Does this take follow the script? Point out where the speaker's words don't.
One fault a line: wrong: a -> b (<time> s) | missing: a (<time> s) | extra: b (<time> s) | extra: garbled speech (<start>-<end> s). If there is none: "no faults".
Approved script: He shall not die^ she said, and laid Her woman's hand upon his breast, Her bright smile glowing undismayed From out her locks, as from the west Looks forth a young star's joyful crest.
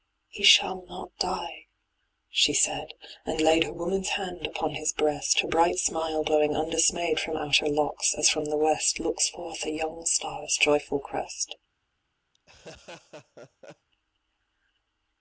no faults